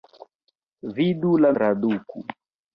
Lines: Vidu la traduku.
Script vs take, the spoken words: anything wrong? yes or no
no